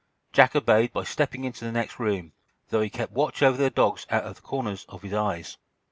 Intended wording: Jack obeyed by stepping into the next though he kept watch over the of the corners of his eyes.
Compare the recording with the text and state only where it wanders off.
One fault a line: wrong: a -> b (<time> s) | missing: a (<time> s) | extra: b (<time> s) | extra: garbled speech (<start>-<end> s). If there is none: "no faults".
extra: room (2.0 s)
extra: dogs out (3.7 s)